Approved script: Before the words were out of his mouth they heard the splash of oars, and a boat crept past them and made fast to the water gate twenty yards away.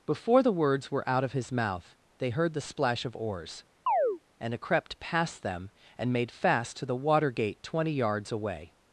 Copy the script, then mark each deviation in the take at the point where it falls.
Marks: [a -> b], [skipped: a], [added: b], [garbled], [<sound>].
Before the words were out of his mouth they heard the splash of oars, [chirp] and a [skipped: boat] crept past them and made fast to the water gate twenty yards away.